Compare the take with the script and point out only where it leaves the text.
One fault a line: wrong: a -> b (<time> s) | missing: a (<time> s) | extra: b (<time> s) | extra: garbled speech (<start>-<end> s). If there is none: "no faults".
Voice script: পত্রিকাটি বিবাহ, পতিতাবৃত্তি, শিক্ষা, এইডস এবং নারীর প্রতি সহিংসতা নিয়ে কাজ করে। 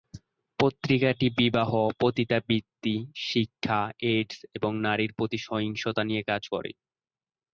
no faults